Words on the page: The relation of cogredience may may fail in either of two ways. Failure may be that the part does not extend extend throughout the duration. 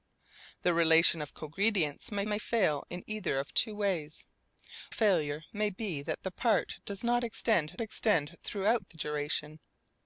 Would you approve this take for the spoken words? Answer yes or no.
yes